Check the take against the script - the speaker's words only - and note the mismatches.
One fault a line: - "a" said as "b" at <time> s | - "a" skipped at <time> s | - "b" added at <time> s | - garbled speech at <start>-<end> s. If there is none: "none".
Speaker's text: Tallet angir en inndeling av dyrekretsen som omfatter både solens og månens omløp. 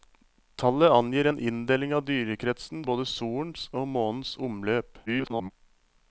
- "som omfatter" skipped at 2.9 s
- garbled speech at 5.1-5.5 s